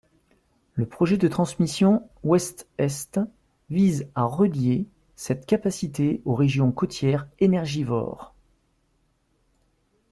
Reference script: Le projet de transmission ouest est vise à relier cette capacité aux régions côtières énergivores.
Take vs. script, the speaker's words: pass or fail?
pass